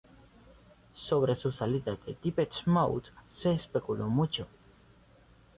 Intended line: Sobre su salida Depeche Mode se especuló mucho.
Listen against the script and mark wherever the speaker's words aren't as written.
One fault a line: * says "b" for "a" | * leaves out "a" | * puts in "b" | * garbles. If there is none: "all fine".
* puts in "de"